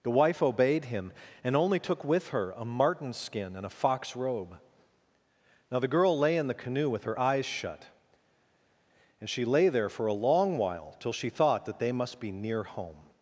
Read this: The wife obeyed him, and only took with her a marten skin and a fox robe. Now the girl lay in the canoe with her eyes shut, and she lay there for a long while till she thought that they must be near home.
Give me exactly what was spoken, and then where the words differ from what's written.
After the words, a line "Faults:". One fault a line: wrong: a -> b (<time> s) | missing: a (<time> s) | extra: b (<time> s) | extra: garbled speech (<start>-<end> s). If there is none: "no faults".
The wife obeyed him, and only took with her a marten skin and a fox robe. Now the girl lay in the canoe with her eyes shut, and she lay there for a long while till she thought that they must be near home.
Faults:
no faults